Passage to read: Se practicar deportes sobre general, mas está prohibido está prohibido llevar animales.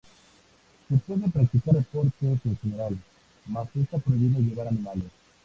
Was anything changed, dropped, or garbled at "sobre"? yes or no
yes